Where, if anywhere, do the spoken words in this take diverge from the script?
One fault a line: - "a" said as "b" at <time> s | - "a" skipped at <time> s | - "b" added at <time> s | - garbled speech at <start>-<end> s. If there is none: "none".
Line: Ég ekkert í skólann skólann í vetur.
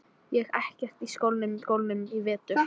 none